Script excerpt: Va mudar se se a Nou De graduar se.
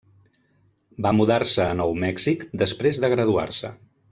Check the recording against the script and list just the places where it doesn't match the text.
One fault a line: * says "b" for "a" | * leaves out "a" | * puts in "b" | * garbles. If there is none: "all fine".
* leaves out "se"
* puts in "Mèxic després"